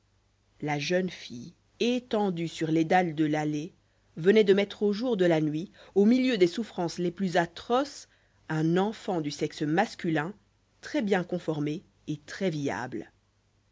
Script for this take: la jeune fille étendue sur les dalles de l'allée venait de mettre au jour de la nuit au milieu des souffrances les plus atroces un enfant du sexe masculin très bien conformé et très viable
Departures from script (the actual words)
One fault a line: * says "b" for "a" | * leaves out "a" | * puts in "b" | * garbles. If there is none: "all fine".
all fine